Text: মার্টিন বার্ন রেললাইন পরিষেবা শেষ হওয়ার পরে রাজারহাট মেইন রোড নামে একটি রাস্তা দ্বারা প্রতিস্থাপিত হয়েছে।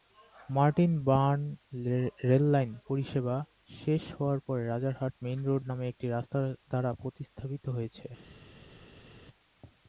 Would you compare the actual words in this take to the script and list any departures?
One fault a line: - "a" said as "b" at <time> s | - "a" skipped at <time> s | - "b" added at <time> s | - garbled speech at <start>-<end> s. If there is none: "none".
none